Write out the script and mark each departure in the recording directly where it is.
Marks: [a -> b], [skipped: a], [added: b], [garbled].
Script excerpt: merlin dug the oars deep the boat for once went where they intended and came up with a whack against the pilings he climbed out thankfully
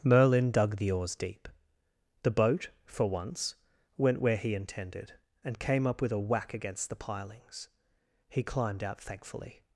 merlin dug the oars deep the boat for once went where [they -> he] intended and came up with a whack against the pilings he climbed out thankfully